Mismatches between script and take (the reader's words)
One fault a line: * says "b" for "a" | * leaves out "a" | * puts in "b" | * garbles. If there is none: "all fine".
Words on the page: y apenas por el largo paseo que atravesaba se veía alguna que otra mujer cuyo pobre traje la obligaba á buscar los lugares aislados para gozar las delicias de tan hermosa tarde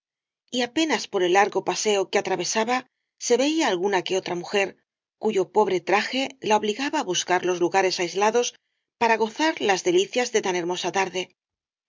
all fine